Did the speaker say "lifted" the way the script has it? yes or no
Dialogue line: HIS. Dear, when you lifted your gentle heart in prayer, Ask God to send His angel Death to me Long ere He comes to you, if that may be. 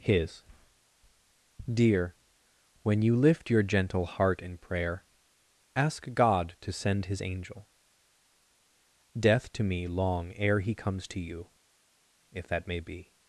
no